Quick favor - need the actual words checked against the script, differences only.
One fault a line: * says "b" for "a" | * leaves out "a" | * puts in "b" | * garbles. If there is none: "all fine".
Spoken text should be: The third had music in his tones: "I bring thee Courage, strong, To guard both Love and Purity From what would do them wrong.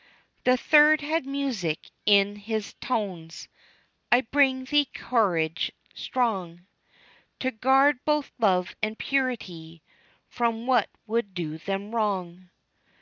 all fine